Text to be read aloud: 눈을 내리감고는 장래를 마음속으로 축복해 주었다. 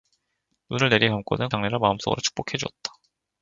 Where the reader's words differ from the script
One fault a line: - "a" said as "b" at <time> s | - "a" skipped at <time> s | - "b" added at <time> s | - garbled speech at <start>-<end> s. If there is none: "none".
none